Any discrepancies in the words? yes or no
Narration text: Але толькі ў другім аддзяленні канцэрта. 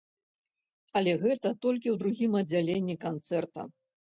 yes